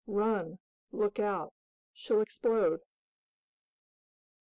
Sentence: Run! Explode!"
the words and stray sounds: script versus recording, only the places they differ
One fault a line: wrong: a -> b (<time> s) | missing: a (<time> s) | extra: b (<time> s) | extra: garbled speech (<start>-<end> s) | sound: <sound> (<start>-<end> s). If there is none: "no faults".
extra: Look out She'll (0.9 s)